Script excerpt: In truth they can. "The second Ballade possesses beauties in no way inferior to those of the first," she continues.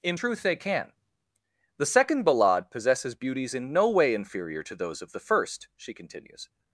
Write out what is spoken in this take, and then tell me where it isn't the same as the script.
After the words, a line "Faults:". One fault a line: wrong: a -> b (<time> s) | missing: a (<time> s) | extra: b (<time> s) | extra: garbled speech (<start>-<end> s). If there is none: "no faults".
In truth they can. "The second Ballade possesses beauties in no way inferior to those of the first," she continues.
Faults:
no faults